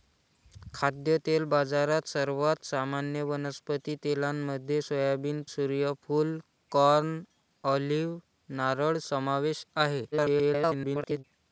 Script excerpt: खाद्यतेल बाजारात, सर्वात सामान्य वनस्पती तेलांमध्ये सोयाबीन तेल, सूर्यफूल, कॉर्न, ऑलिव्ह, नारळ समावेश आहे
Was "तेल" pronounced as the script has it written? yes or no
no